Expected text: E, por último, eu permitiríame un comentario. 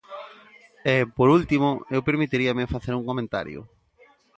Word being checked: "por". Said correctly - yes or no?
yes